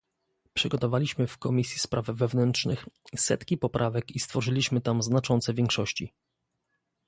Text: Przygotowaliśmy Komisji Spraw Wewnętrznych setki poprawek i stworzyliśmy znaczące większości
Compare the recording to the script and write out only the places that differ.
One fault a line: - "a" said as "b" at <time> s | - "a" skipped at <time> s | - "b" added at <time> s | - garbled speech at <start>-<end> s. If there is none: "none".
- "w" added at 1.3 s
- "tam" added at 4.8 s